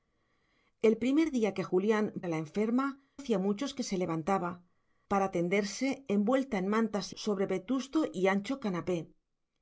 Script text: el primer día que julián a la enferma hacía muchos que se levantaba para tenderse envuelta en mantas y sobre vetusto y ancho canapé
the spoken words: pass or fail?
pass